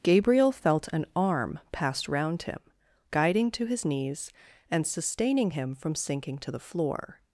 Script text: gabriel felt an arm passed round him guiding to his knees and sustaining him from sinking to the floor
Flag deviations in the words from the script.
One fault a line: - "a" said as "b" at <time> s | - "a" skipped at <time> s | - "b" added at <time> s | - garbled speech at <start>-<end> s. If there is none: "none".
none